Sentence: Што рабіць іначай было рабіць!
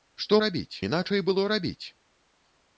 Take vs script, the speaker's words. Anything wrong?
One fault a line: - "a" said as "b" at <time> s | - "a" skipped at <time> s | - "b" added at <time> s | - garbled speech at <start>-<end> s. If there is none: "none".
none